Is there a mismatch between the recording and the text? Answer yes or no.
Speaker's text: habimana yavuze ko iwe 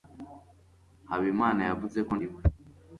no